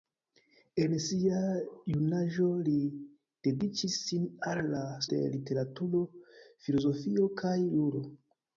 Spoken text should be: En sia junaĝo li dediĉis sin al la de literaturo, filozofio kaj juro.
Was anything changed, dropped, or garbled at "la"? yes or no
no